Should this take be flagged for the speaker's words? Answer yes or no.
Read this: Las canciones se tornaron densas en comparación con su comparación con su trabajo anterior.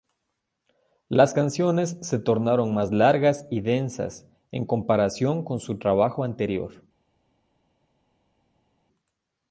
yes